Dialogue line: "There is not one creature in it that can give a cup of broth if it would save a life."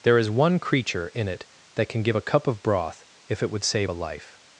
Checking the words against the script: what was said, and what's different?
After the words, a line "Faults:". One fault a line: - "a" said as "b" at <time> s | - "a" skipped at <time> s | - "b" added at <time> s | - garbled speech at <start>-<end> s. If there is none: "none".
"There is one creature in it that can give a cup of broth if it would save a life."
Faults:
- "not" skipped at 0.3 s